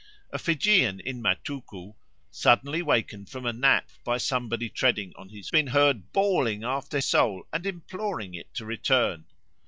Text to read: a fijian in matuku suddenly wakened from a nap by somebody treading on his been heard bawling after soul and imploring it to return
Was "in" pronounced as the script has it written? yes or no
yes